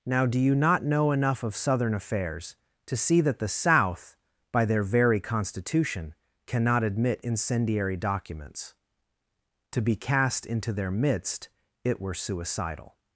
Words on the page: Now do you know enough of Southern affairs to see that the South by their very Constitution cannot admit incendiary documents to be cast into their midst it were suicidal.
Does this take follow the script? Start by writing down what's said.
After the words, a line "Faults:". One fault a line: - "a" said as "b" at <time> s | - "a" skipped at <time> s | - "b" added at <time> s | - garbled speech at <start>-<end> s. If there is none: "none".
Now do you not know enough of Southern affairs to see that the South by their very Constitution cannot admit incendiary documents to be cast into their midst it were suicidal.
Faults:
- "not" added at 0.6 s